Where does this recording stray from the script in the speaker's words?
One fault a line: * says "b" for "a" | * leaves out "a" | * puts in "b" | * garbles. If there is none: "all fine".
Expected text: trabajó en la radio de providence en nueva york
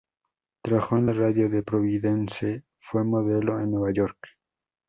* puts in "fue modelo"